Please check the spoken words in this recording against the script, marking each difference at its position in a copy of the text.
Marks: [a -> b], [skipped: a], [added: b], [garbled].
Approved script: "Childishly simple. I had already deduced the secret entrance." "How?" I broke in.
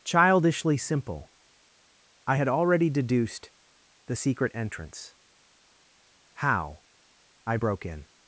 "Childishly simple. I had already deduced the secret entrance." "How?" I broke in.